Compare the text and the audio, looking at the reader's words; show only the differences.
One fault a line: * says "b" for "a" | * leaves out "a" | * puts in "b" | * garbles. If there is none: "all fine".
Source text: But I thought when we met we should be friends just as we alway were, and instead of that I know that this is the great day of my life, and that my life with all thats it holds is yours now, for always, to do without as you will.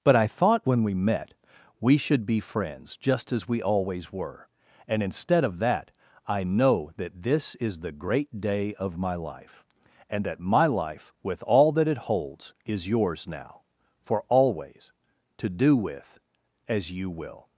* says "always" for "alway"
* says "that" for "thats"
* says "with" for "without"